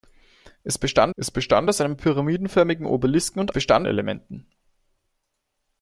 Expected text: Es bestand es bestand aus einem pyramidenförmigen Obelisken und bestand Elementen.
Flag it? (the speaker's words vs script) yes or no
no